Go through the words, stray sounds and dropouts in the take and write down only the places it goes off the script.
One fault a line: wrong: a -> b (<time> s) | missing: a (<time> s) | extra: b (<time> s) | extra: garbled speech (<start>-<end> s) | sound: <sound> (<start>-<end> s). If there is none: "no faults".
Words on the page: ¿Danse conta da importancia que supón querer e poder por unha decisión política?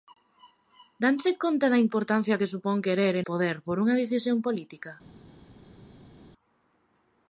no faults